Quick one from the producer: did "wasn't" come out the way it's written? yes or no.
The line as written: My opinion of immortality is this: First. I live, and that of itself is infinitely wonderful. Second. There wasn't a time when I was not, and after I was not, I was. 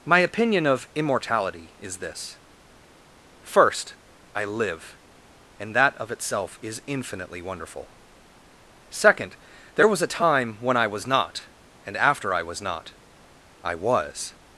no